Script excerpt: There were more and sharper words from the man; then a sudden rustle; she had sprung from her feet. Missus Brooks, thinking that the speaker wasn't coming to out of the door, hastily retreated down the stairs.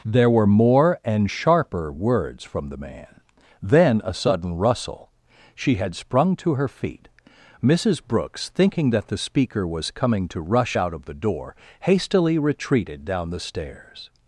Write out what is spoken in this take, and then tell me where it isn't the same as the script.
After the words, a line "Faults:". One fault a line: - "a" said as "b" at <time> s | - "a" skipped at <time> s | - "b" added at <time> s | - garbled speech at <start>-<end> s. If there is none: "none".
There were more and sharper words from the man; then a sudden rustle; she had sprung to her feet. Missus Brooks, thinking that the speaker was coming to rush out of the door, hastily retreated down the stairs.
Faults:
- "from" said as "to" at 6.4 s
- "wasn't" said as "was" at 9.7 s
- "rush" added at 10.4 s